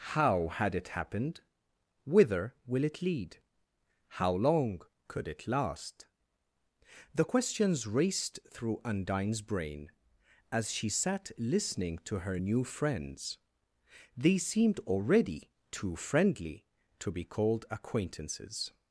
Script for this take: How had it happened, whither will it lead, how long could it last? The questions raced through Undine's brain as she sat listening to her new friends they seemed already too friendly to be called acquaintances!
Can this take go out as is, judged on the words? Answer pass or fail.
pass